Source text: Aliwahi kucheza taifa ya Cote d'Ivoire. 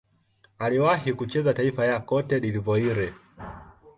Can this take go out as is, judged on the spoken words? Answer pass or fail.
pass